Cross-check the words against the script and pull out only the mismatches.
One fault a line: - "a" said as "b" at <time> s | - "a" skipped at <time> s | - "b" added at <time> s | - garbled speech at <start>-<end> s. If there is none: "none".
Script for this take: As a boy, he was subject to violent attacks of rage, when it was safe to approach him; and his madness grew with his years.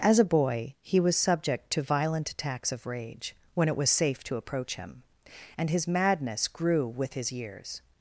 none